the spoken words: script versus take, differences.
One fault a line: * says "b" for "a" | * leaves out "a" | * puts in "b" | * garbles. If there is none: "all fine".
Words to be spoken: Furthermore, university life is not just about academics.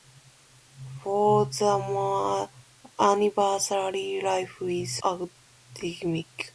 * leaves out "not just about"